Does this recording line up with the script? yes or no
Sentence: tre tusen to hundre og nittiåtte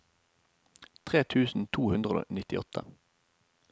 yes